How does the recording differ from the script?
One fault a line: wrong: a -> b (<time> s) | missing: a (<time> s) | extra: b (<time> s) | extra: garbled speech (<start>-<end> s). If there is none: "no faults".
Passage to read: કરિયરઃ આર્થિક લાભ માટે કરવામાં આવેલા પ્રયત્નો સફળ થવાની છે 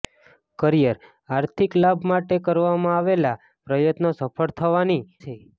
no faults